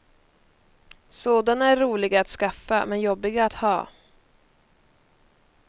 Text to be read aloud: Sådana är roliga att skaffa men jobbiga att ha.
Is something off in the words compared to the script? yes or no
no